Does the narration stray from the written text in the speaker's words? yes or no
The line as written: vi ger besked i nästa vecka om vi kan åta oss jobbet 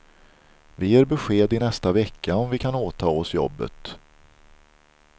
no